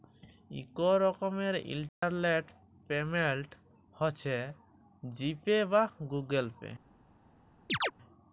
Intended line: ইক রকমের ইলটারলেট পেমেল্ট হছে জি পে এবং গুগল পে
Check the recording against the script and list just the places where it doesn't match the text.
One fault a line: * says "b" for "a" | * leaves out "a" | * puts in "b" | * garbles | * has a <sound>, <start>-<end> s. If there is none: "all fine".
* has a dropout, 1.9-2.0 s
* says "বা" for "এবং"
* has a chirp, 7.7-7.9 s